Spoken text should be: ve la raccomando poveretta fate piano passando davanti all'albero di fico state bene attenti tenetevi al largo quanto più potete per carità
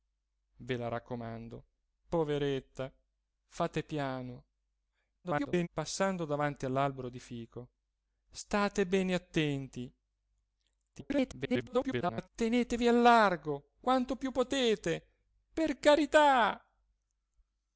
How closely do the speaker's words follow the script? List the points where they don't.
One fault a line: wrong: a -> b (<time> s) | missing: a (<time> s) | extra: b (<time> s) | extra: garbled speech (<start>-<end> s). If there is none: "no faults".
extra: garbled speech (5.2-5.7 s)
extra: garbled speech (10.9-12.3 s)